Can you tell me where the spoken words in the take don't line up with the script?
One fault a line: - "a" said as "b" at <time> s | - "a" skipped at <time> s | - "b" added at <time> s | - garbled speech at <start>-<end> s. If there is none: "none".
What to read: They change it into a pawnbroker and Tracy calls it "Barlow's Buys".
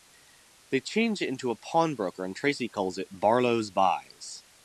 none